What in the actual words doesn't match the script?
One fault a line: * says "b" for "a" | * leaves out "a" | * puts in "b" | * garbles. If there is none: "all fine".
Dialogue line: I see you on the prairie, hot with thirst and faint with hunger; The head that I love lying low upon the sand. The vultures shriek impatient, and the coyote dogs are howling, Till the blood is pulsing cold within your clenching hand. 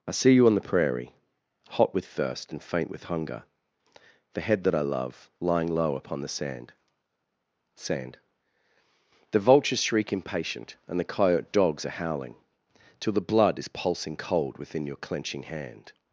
* puts in "sand"